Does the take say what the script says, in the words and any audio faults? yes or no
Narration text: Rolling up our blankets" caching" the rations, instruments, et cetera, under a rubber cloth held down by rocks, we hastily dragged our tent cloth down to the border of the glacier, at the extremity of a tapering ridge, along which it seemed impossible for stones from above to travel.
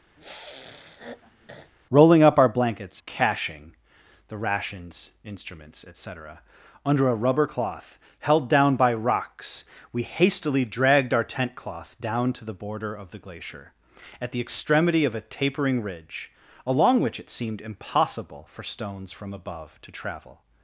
no